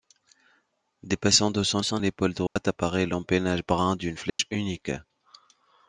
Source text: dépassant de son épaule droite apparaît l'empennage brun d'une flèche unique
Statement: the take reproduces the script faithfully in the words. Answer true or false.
false